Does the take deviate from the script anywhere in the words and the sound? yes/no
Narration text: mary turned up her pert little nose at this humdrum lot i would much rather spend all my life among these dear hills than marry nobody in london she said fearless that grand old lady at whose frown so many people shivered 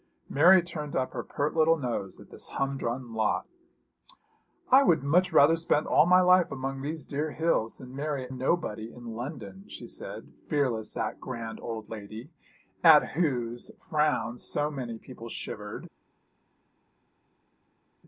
no